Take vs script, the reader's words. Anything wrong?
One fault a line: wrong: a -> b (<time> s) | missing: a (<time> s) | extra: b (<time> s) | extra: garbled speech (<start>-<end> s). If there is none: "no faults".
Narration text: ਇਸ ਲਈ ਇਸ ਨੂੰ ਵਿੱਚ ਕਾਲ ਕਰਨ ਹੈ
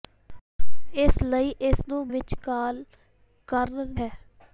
no faults